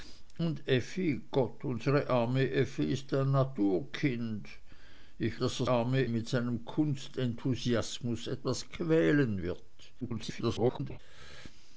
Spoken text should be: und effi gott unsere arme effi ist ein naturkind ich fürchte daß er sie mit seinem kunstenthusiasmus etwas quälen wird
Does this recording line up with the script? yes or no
no